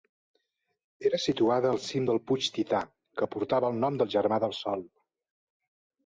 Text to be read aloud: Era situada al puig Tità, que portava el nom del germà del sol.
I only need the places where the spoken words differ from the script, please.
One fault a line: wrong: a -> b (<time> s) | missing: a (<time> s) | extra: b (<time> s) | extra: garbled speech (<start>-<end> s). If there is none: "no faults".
extra: cim del (1.9 s)